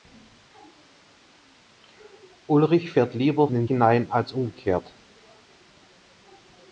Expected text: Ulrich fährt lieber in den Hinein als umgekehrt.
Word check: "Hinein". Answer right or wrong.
right